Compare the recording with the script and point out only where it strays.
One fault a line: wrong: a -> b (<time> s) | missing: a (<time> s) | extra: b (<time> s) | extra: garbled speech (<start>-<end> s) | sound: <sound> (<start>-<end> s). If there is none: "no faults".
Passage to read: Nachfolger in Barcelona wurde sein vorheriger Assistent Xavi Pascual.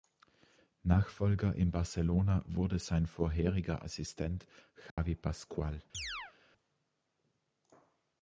sound: dropout (4.9-5.0 s)
sound: chirp (5.9-6.3 s)